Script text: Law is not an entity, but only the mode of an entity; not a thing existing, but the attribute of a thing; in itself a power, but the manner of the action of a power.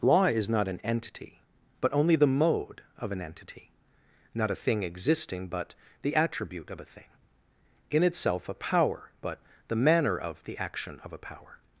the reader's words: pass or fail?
pass